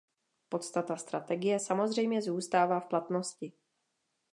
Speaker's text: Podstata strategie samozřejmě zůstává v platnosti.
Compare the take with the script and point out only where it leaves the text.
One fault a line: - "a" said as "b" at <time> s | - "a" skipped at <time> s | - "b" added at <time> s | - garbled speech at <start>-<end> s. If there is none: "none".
none